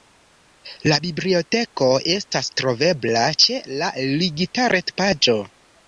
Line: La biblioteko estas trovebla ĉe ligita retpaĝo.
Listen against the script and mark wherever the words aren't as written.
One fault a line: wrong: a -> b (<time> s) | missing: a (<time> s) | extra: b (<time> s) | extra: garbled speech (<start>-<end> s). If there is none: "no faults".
extra: la (3.8 s)